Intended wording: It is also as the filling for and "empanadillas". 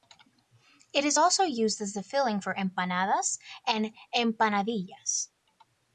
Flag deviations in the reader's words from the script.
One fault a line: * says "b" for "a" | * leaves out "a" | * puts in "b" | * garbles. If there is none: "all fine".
* puts in "used"
* puts in "empanadas"